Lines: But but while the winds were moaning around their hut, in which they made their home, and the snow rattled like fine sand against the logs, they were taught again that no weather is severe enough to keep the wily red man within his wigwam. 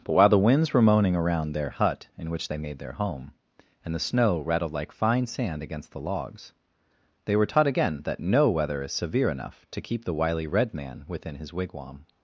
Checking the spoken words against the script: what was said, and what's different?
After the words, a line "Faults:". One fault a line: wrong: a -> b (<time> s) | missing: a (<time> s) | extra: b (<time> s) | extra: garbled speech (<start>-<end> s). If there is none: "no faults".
But while the winds were moaning around their hut, in which they made their home, and the snow rattled like fine sand against the logs, they were taught again that no weather is severe enough to keep the wily red man within his wigwam.
Faults:
missing: but (0.1 s)